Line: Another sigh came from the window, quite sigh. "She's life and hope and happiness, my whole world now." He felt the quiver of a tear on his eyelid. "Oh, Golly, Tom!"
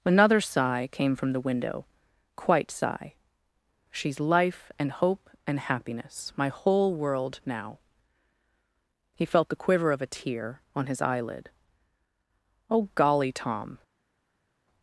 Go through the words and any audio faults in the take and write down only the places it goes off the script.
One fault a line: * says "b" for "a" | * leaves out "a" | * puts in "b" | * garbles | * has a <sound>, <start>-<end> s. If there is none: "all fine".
all fine